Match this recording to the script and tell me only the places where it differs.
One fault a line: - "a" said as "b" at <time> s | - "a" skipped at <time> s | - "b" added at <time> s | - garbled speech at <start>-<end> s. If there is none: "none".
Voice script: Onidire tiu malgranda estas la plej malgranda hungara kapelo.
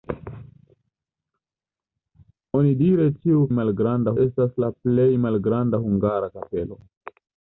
none